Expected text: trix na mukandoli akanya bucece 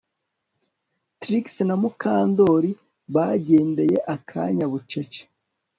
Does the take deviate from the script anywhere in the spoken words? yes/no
yes